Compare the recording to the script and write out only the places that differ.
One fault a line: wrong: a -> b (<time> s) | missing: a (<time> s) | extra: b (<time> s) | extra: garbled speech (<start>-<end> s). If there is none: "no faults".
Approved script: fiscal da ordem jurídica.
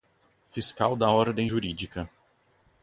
no faults